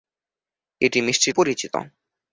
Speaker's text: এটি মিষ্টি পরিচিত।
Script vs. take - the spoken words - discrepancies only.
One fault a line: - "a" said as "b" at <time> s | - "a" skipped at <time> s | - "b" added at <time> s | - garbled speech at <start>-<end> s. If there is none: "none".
none